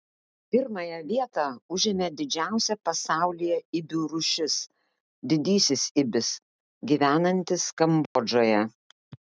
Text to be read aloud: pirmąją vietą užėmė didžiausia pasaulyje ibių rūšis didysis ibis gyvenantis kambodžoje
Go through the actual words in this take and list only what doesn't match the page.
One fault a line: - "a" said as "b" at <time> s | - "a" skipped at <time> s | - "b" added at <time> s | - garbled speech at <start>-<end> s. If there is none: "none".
none